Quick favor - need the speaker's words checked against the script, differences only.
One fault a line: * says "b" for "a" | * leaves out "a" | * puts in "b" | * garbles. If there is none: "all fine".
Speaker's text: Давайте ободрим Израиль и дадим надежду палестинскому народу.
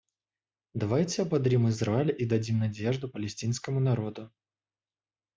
all fine